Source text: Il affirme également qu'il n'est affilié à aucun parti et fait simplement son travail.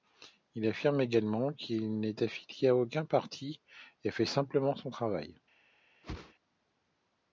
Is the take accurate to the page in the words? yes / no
yes